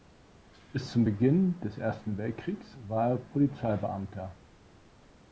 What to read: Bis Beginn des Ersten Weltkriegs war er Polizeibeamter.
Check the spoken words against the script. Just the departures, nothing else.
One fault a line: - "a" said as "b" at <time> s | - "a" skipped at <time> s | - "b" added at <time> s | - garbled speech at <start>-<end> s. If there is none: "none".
- "zum" added at 0.9 s